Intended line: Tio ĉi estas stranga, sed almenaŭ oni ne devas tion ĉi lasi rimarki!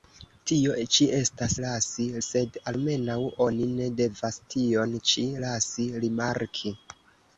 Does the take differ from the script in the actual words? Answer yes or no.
yes